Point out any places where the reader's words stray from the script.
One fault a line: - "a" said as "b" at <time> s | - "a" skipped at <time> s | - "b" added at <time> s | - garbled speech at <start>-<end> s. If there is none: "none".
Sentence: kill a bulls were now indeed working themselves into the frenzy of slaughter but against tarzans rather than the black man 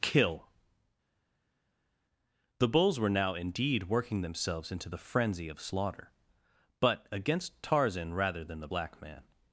- "a" said as "the" at 2.6 s
- "tarzans" said as "tarzan" at 7.6 s